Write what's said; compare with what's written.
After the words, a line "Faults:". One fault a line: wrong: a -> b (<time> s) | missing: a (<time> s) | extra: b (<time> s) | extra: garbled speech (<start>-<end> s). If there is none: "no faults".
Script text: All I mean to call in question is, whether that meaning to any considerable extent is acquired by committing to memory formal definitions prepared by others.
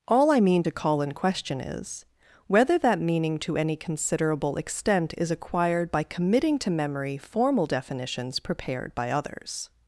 All I mean to call in question is, whether that meaning to any considerable extent is acquired by committing to memory formal definitions prepared by others.
Faults:
no faults